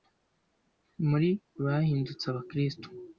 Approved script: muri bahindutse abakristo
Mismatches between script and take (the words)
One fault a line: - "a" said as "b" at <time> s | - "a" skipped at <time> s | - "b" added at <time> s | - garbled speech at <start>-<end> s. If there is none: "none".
none